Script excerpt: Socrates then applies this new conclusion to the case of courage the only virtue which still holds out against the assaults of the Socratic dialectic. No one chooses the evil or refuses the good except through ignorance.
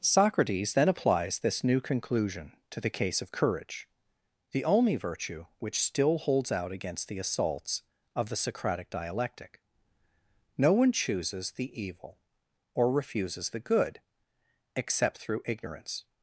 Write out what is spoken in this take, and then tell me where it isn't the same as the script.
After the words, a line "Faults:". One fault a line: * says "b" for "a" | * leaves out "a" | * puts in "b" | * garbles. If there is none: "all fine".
Socrates then applies this new conclusion to the case of courage the only virtue which still holds out against the assaults of the Socratic dialectic. No one chooses the evil or refuses the good except through ignorance.
Faults:
all fine